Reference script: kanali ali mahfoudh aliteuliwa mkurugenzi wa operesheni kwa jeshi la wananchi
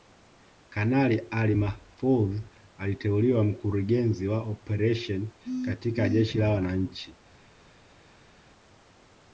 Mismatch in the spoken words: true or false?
true